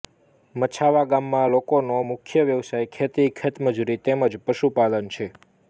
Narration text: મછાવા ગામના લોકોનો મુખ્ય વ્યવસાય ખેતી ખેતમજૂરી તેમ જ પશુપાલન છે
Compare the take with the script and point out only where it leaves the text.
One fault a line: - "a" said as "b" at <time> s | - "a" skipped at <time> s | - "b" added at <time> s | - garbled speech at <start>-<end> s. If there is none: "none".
none